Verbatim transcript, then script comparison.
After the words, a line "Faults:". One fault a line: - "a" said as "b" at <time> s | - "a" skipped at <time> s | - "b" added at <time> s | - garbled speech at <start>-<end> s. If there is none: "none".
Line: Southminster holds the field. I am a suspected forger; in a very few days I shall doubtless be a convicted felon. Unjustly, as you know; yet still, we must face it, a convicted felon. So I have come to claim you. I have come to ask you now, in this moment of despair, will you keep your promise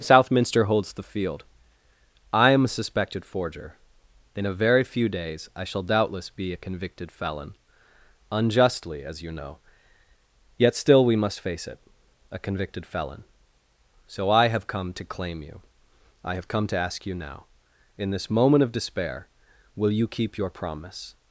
Southminster holds the field. I am a suspected forger; in a very few days I shall doubtless be a convicted felon. Unjustly, as you know; yet still, we must face it, a convicted felon. So I have come to claim you. I have come to ask you now, in this moment of despair, will you keep your promise
Faults:
none